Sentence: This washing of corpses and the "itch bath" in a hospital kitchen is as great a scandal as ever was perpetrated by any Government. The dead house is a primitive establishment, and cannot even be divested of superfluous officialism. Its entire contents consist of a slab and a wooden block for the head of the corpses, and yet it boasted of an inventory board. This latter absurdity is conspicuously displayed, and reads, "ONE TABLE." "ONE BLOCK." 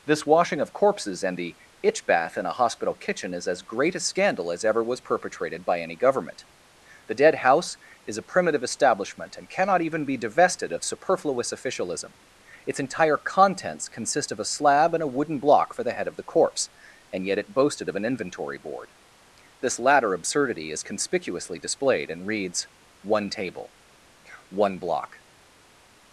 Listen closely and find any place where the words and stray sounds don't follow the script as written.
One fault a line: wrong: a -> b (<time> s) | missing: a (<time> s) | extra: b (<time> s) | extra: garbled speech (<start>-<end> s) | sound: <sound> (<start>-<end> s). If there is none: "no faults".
wrong: corpses -> corpse (16.2 s)